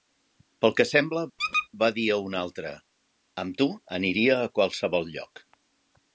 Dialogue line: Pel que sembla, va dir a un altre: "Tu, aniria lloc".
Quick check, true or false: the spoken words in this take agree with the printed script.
false